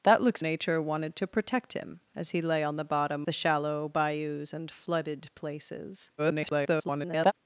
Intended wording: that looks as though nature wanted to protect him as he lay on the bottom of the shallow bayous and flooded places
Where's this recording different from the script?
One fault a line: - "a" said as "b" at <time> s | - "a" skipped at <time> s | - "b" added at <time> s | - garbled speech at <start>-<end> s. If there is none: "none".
- "as though" skipped at 0.4 s
- "of" skipped at 3.2 s
- garbled speech at 6.2-7.3 s